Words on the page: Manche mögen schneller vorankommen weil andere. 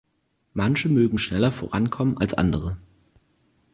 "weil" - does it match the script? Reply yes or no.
no